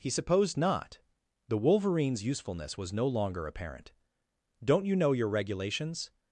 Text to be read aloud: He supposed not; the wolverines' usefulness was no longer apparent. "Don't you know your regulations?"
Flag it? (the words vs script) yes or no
no